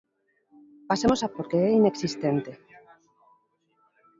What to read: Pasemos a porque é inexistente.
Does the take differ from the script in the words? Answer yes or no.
no